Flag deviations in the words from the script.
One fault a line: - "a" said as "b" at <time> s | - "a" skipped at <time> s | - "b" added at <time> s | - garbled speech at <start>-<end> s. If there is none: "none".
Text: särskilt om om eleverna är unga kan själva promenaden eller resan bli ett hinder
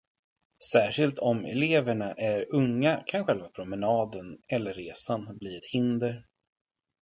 - "om" skipped at 1.4 s